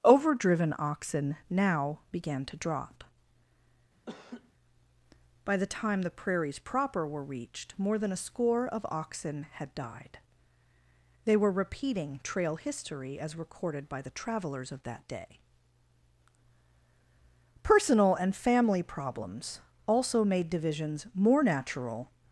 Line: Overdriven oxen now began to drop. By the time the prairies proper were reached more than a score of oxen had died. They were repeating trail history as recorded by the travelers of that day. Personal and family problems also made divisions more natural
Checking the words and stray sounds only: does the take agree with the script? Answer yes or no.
no